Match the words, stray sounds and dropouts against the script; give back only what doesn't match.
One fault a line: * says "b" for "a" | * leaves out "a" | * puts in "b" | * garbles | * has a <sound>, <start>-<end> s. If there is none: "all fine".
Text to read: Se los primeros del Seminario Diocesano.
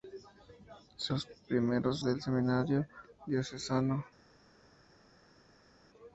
all fine